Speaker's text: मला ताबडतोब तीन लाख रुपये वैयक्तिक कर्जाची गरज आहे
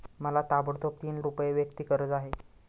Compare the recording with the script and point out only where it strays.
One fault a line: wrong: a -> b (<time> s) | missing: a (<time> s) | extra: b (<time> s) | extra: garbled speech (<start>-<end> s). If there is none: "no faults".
missing: लाख (1.2 s)
missing: कर्जाची (1.9 s)